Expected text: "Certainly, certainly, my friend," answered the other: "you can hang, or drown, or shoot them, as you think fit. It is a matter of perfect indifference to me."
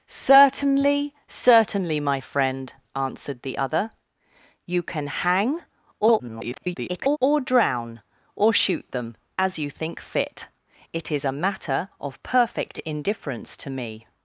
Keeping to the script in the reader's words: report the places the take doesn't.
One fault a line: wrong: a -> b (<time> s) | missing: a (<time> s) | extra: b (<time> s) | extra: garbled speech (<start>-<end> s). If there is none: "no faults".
extra: garbled speech (6.0-7.2 s)